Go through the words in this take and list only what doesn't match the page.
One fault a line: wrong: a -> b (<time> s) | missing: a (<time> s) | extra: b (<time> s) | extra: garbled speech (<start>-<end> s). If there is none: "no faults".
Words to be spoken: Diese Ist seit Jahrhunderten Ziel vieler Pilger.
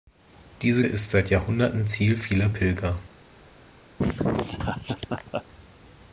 no faults